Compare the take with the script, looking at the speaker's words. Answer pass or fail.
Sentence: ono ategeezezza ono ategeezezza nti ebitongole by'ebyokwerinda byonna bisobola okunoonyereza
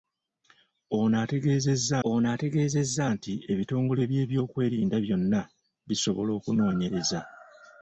pass